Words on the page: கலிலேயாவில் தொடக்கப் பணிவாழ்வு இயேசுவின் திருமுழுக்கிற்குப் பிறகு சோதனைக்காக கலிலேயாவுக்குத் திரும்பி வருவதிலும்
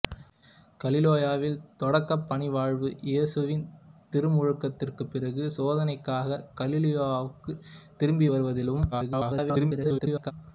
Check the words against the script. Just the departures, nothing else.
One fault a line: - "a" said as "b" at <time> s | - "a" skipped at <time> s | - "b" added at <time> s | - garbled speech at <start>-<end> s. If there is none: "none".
- garbled speech at 8.9-10.3 s